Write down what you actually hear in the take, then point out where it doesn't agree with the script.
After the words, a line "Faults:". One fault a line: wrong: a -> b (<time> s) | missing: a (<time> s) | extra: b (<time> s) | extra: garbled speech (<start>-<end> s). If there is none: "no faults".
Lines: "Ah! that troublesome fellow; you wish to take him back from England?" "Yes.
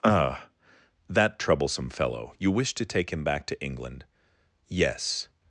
"Ah! that troublesome fellow; you wish to take him back to England?" "Yes.
Faults:
wrong: from -> to (3.5 s)